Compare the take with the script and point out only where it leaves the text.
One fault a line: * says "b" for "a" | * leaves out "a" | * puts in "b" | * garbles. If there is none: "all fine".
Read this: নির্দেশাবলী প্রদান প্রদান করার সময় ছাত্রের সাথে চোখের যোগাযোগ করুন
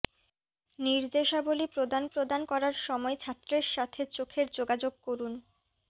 all fine